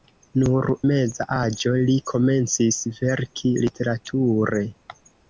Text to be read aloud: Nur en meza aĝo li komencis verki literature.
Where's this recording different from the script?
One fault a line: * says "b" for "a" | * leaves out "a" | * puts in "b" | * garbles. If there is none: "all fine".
* leaves out "en"